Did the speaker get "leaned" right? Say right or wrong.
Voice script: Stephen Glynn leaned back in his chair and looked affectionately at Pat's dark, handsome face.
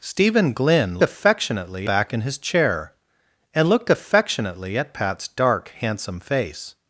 wrong